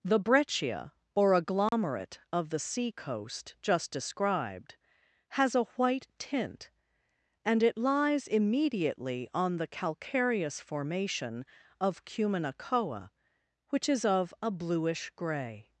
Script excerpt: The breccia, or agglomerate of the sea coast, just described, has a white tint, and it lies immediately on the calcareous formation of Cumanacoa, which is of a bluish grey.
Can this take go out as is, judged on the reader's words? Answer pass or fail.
pass